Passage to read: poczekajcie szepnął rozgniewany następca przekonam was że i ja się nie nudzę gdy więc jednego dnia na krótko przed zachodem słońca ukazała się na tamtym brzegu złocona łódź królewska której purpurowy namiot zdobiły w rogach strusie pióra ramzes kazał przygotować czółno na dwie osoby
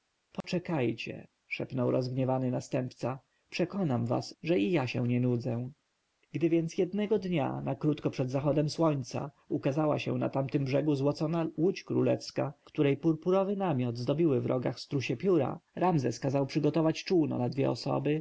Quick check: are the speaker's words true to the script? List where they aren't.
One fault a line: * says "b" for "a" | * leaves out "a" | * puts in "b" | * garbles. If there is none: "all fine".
all fine